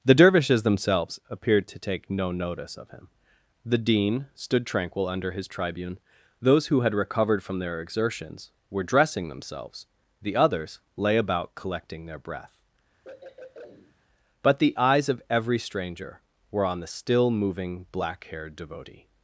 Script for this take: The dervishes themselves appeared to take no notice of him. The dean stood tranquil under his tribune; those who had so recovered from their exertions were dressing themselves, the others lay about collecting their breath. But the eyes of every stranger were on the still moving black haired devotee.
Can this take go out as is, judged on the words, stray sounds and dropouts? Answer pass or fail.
fail